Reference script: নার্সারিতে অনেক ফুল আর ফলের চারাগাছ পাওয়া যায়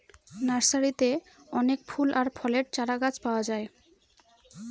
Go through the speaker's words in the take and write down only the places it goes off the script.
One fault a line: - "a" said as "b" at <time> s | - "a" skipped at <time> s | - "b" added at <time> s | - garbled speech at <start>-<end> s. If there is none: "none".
none